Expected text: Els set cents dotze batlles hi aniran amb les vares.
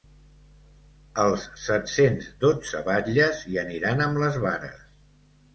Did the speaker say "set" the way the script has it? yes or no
yes